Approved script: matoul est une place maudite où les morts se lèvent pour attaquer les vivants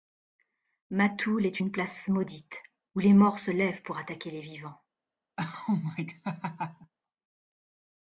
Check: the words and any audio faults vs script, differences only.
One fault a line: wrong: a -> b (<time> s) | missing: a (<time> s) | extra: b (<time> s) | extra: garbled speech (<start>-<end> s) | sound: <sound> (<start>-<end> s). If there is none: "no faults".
sound: laugh (5.4-6.9 s)